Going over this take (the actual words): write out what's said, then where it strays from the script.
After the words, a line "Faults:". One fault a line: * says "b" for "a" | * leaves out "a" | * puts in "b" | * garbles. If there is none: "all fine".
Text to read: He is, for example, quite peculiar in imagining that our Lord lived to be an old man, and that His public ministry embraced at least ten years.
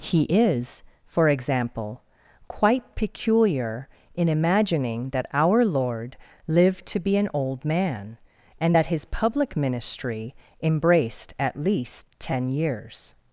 He is, for example, quite peculiar in imagining that our Lord lived to be an old man, and that His public ministry embraced at least ten years.
Faults:
all fine